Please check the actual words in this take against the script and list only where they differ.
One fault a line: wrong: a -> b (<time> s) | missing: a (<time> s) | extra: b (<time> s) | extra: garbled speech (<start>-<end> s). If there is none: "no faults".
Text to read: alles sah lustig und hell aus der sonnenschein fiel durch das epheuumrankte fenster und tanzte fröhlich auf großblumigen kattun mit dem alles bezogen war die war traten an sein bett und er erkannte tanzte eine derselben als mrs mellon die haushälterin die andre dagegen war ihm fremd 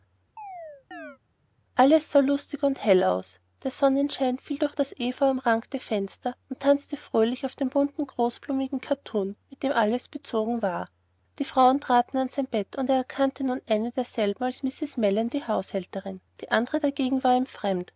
extra: dem bunten (7.6 s)
wrong: war -> frauen (11.5 s)
wrong: tanzte -> nun (13.4 s)